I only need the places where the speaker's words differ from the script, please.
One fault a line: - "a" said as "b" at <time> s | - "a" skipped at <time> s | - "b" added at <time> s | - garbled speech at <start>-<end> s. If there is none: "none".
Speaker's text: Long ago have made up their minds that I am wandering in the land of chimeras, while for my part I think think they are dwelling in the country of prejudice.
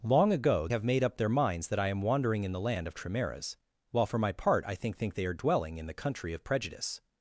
none